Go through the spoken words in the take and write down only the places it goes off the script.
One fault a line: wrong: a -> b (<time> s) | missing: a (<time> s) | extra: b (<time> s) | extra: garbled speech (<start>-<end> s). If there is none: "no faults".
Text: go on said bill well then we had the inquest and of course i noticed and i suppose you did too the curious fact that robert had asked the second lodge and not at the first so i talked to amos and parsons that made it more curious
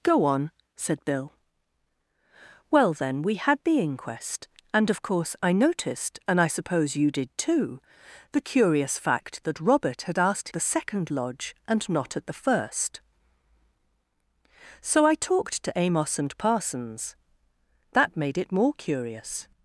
no faults